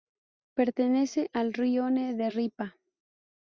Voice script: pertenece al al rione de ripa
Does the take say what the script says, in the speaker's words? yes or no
no